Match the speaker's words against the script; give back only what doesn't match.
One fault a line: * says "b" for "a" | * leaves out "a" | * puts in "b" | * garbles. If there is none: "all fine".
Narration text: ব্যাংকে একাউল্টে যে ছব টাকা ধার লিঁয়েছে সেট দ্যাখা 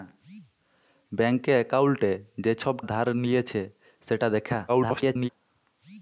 * leaves out "টাকা"
* garbles